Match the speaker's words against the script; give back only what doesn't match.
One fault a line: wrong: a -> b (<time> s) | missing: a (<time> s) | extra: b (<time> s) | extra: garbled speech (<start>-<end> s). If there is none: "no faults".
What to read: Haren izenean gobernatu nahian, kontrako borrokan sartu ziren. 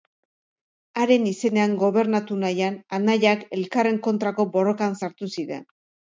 extra: anaiak elkarren (3.0 s)